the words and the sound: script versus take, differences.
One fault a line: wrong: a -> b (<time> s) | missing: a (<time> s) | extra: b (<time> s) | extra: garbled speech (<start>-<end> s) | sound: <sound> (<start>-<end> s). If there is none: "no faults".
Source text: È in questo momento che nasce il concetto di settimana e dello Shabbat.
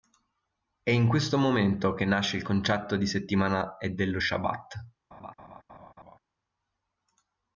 sound: laugh (5.1-6.2 s)